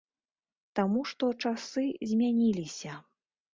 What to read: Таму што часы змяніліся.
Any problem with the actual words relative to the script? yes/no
no